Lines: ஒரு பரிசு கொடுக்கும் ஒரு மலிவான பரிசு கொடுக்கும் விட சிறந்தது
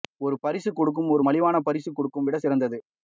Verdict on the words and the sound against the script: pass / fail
pass